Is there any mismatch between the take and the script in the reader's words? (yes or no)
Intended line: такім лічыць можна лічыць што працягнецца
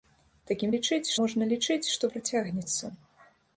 no